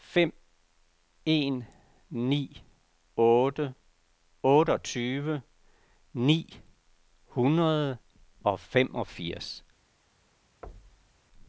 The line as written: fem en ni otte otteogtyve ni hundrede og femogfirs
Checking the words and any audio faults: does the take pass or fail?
fail